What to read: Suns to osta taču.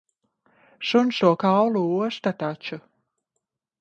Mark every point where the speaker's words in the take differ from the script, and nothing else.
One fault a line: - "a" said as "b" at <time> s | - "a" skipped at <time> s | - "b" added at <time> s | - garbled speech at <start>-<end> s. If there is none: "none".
- "kaulu" added at 1.3 s